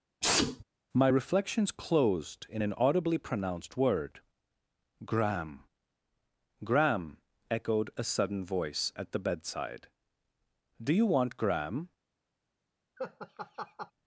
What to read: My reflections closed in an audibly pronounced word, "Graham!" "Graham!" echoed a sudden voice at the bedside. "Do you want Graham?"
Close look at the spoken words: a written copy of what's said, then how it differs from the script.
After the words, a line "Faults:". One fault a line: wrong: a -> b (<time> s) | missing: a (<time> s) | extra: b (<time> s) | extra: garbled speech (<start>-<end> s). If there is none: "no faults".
My reflections closed in an audibly pronounced word, "Graham!" "Graham!" echoed a sudden voice at the bedside. "Do you want Graham?"
Faults:
no faults